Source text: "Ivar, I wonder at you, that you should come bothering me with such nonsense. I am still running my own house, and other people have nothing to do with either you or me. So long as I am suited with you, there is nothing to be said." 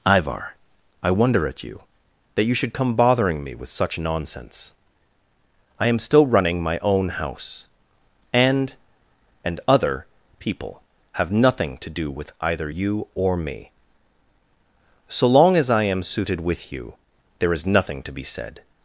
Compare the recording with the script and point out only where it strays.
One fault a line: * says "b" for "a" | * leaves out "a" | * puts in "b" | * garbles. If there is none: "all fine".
* puts in "and"